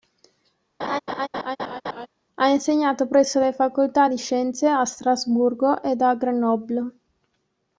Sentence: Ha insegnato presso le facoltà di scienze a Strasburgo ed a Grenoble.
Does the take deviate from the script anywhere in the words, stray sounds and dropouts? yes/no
yes